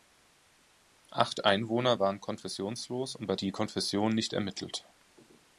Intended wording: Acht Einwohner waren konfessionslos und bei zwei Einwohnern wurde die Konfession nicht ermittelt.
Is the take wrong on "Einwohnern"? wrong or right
wrong